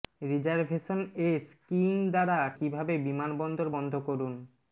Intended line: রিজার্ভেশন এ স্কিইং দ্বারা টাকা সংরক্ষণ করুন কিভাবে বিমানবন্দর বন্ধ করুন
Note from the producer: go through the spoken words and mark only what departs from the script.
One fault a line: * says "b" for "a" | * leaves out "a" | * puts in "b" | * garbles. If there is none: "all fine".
* leaves out "টাকা সংরক্ষণ করুন"